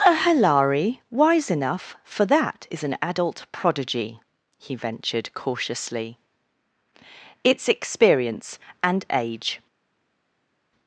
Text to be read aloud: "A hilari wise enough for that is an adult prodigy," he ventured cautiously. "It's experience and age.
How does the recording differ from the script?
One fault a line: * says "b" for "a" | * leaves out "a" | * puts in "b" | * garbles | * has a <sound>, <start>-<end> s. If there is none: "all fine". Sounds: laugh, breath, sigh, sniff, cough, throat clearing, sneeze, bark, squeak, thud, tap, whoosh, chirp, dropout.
all fine